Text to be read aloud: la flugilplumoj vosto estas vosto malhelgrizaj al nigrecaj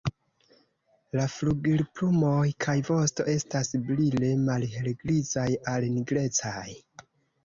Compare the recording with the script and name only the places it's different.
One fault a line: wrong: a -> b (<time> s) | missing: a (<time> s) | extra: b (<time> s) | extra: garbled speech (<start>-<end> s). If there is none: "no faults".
extra: kaj (2.6 s)
wrong: vosto -> brile (3.9 s)